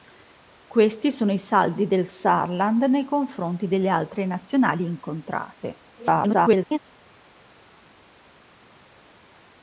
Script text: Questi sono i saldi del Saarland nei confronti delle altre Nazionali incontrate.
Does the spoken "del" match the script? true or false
true